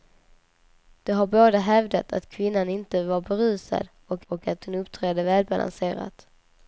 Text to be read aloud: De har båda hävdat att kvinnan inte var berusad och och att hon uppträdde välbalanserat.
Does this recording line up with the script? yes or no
yes